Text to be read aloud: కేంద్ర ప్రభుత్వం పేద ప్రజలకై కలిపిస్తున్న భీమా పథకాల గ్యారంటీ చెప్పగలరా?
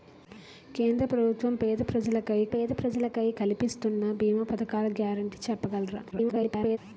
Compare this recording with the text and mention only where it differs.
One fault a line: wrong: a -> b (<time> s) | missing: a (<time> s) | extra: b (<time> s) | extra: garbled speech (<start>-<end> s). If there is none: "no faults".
extra: పేద ప్రజలకై (2.5 s)
extra: garbled speech (6.1-6.8 s)